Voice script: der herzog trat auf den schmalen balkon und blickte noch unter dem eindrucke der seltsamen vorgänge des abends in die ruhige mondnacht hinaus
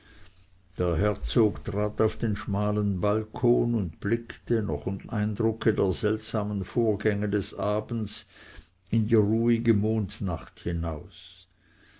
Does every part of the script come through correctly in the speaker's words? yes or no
no